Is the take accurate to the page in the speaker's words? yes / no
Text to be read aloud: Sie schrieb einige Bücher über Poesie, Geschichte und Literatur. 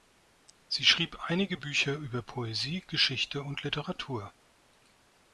yes